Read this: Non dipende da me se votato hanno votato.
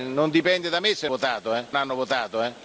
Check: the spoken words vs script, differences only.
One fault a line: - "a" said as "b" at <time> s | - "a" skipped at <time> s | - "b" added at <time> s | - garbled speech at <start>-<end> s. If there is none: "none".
none